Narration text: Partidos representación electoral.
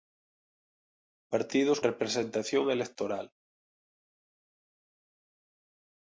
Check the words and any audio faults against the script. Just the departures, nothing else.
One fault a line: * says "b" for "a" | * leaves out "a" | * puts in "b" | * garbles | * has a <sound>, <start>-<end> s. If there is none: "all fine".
all fine